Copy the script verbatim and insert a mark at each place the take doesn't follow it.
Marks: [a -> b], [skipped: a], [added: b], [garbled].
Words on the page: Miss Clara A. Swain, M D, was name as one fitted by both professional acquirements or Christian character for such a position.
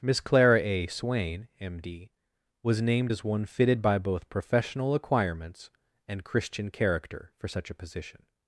Miss Clara A. Swain, M D, was [name -> named] as one fitted by both professional acquirements [or -> and] Christian character for such a position.